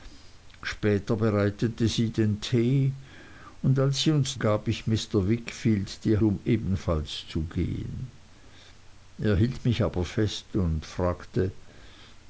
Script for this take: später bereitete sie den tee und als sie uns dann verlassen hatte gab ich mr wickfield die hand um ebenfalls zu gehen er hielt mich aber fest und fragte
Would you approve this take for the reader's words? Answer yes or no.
no